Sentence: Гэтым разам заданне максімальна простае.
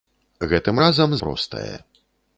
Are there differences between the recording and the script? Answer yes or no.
yes